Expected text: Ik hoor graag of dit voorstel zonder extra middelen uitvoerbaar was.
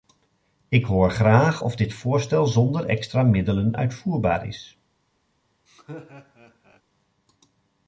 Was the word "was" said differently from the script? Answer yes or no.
yes